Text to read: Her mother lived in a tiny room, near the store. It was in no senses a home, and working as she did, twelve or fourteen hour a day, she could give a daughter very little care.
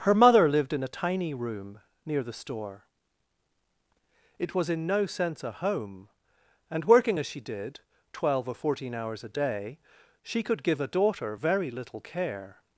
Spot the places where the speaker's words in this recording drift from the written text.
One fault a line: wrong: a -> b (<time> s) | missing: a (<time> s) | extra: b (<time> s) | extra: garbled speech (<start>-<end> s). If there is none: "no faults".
wrong: senses -> sense (5.0 s)
wrong: hour -> hours (8.9 s)